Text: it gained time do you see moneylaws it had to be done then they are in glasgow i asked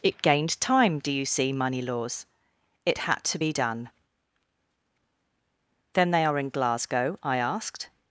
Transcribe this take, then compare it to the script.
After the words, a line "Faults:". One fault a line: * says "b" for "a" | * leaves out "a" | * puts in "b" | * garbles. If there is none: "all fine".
it gained time do you see moneylaws it had to be done then they are in glasgow i asked
Faults:
all fine